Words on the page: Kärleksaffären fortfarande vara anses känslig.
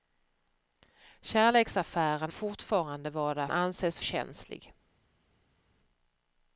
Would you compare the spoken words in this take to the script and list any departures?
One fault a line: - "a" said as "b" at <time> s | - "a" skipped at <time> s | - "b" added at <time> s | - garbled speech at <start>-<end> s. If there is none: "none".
none